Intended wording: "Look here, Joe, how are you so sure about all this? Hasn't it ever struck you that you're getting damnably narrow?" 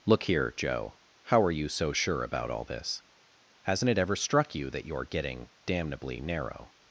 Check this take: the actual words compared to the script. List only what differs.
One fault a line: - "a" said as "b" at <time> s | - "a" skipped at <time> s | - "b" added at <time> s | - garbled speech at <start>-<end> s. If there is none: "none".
none